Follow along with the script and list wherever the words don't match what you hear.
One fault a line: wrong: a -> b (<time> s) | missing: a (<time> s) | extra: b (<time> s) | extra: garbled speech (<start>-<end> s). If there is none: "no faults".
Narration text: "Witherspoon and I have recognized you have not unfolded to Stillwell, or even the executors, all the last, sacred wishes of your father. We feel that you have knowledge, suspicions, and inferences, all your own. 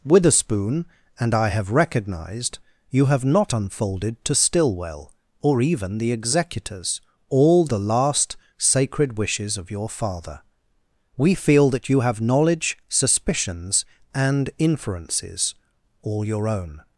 no faults